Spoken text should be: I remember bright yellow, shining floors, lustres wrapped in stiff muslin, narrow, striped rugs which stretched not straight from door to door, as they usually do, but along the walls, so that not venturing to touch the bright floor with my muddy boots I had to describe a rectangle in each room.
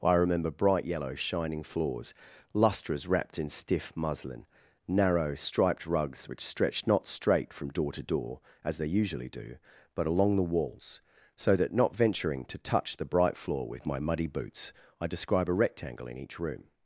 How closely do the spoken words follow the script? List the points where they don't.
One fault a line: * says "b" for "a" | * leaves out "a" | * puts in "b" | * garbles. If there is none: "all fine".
* leaves out "had to"